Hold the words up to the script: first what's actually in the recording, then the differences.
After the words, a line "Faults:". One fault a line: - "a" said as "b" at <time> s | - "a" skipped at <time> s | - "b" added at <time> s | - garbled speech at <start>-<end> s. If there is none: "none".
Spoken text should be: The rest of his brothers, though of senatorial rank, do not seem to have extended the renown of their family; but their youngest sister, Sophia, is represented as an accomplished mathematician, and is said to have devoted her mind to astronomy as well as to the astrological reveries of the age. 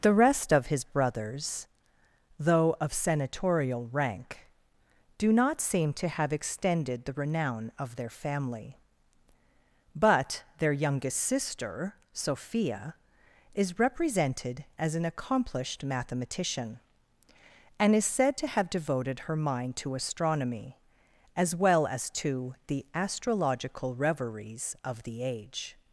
The rest of his brothers, though of senatorial rank, do not seem to have extended the renown of their family; but their youngest sister, Sophia, is represented as an accomplished mathematician, and is said to have devoted her mind to astronomy as well as to the astrological reveries of the age.
Faults:
none